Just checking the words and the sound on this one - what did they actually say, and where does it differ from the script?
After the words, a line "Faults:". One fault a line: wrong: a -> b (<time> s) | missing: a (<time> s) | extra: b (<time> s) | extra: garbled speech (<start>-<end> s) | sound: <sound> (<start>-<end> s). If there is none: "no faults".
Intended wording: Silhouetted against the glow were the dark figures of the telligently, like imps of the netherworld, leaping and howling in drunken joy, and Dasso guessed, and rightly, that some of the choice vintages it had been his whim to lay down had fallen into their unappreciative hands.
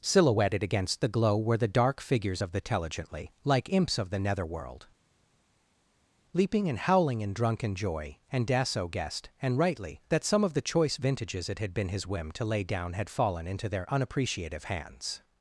Silhouetted against the glow were the dark figures of the telligently, like imps of the netherworld, leaping and howling in drunken joy, and Dasso guessed, and rightly, that some of the choice vintages it had been his whim to lay down had fallen into their unappreciative hands.
Faults:
no faults